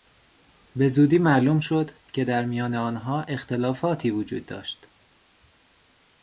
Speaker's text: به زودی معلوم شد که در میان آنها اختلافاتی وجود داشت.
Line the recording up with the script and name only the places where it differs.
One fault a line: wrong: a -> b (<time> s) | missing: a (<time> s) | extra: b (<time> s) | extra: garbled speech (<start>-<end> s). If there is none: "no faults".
no faults